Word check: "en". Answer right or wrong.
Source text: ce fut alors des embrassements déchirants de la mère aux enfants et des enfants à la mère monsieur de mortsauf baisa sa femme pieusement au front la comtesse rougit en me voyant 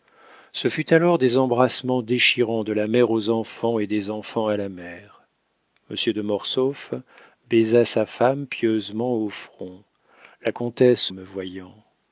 wrong